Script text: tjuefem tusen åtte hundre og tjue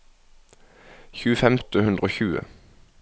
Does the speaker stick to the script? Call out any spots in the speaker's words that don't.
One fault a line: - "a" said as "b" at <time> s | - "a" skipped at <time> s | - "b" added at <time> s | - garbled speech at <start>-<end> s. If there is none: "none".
- "tusen" skipped at 1.6 s